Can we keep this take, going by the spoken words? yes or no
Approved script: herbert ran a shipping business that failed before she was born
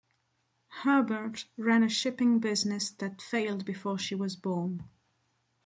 yes